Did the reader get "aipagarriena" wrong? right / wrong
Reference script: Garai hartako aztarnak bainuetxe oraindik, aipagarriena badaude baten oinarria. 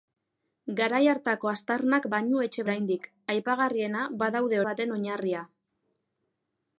right